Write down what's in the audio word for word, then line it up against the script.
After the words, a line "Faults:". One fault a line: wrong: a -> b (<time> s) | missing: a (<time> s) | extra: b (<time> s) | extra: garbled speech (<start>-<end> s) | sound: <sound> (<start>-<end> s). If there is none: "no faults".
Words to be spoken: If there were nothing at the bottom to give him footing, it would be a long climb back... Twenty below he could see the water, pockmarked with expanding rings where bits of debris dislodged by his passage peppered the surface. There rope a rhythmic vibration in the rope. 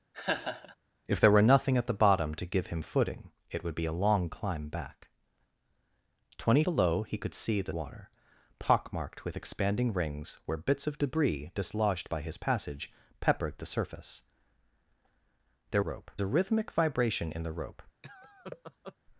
If there were nothing at the bottom to give him footing, it would be a long climb back... Twenty below he could see the water, pockmarked with expanding rings where bits of debris dislodged by his passage peppered the surface. There rope a rhythmic vibration in the rope.
Faults:
sound: laugh (0.1-0.8 s)
sound: laugh (18.0-18.9 s)